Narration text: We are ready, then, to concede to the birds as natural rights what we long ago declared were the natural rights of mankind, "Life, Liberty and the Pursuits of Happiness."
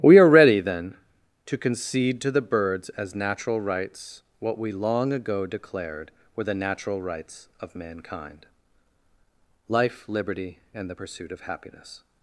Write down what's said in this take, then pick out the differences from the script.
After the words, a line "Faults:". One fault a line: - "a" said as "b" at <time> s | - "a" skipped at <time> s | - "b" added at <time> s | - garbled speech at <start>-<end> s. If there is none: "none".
We are ready, then, to concede to the birds as natural rights what we long ago declared were the natural rights of mankind, "Life, Liberty and the Pursuit of Happiness."
Faults:
- "Pursuits" said as "Pursuit" at 10.9 s